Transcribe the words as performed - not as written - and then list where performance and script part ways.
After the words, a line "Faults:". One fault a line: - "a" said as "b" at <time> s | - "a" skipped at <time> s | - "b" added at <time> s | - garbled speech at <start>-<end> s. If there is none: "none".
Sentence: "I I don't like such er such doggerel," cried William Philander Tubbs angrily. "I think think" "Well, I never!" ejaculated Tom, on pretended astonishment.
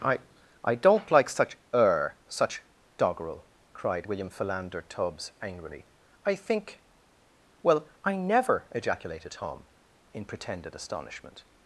"I I don't like such er such doggerel," cried William Philander Tubbs angrily. "I think" "Well, I never!" ejaculated Tom, in pretended astonishment.
Faults:
- "think" skipped at 6.8 s
- "on" said as "in" at 10.1 s